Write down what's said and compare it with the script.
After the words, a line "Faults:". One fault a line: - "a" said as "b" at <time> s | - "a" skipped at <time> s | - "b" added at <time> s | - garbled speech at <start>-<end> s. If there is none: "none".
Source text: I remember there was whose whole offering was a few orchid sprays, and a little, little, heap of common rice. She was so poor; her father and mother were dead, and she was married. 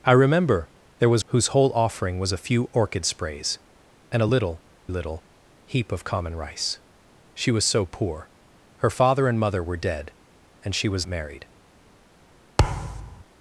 I remember there was whose whole offering was a few orchid sprays, and a little, little, heap of common rice. She was so poor; her father and mother were dead, and she was married.
Faults:
none